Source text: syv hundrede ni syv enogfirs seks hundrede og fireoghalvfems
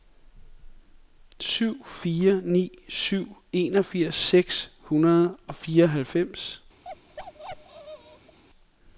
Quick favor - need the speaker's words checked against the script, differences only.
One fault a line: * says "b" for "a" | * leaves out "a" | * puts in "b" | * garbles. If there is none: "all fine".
* says "fire" for "hundrede"